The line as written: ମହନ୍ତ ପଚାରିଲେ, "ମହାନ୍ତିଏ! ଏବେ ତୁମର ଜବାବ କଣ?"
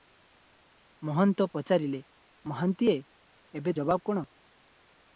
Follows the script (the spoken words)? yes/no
no